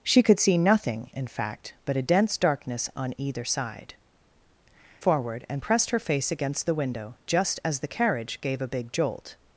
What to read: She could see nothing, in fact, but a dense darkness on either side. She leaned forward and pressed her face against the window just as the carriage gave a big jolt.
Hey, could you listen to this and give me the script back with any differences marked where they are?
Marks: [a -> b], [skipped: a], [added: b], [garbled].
She could see nothing, in fact, but a dense darkness on either side. [skipped: She leaned] forward and pressed her face against the window just as the carriage gave a big jolt.